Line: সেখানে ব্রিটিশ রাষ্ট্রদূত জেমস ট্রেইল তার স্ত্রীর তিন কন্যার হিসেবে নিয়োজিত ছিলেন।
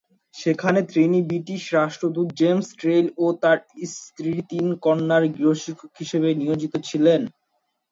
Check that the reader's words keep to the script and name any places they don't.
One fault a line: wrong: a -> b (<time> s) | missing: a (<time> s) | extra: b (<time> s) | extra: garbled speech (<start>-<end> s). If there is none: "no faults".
extra: তিনি (0.9 s)
extra: ও (3.2 s)
extra: গৃহশিক্ষক (5.3 s)